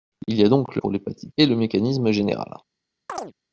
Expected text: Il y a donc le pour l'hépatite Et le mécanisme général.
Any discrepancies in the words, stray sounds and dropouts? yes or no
yes